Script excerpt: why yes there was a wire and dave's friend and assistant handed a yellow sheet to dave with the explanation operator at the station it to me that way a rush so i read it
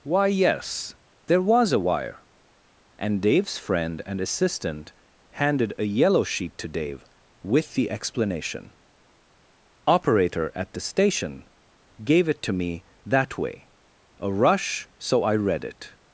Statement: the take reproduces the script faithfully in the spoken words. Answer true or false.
false